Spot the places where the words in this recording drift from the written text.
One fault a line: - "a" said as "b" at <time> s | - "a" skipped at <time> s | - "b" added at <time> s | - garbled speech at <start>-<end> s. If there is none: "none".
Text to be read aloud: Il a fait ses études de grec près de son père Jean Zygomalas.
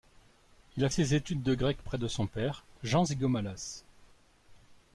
- "fait" skipped at 0.9 s